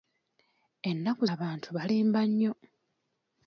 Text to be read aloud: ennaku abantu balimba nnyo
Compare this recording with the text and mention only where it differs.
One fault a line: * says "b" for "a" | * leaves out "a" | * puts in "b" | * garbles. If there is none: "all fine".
all fine